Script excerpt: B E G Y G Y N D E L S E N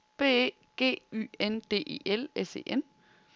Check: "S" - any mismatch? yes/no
no